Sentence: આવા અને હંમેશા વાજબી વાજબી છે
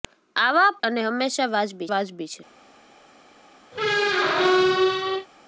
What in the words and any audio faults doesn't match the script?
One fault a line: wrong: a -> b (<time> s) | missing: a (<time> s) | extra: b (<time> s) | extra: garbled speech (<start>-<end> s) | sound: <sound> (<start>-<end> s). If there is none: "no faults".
sound: squeak (3.7-5.3 s)